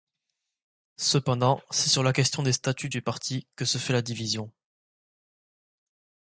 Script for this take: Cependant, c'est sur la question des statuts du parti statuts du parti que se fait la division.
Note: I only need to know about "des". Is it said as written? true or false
true